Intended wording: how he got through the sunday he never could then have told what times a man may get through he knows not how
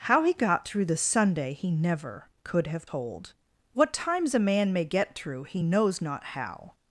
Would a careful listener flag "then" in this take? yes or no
yes